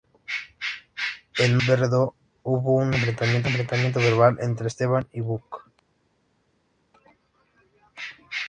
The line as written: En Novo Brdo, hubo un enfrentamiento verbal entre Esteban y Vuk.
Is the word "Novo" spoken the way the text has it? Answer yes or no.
no